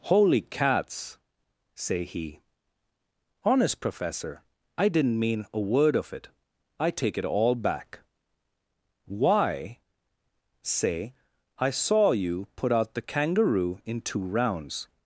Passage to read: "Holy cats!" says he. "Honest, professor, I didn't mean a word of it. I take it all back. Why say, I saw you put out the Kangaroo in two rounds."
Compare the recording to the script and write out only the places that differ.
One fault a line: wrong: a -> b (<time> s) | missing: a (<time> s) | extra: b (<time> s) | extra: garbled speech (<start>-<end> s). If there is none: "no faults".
wrong: says -> say (1.8 s)